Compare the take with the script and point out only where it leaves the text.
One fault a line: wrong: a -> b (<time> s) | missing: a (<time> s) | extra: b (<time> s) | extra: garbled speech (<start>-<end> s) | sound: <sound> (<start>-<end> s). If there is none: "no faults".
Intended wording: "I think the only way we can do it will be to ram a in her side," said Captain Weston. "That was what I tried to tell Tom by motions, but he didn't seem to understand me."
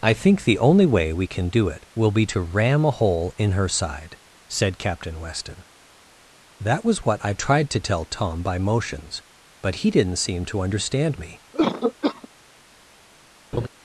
extra: hole (2.9 s)
sound: cough (11.5-12.3 s)
sound: laugh (13.5-13.7 s)